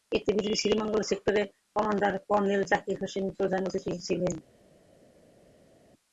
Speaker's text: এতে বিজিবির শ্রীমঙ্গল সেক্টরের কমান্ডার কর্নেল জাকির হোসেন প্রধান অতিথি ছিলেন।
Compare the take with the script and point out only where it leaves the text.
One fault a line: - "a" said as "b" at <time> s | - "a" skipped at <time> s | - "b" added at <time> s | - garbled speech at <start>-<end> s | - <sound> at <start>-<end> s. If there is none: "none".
none